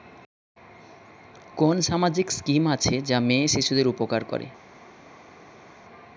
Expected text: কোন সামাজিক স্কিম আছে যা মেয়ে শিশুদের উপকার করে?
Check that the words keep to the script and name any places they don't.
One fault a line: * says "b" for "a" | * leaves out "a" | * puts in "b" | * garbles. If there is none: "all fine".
all fine